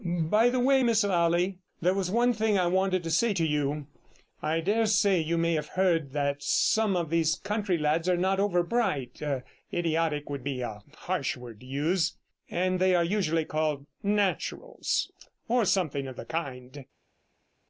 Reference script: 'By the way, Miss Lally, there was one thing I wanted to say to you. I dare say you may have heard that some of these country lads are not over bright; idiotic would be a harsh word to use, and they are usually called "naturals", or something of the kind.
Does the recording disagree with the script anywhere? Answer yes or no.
no